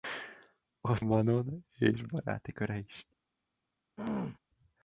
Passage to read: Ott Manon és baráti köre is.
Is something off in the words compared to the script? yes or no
no